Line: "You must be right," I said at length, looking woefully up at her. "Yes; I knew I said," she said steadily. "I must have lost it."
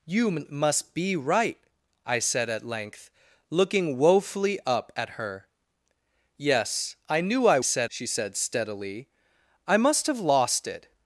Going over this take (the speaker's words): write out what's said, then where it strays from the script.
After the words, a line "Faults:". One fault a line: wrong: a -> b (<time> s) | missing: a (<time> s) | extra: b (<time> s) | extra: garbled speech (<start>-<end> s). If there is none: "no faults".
"You must be right," I said at length, looking woefully up at her. "Yes; I knew I said," she said steadily. "I must have lost it."
Faults:
no faults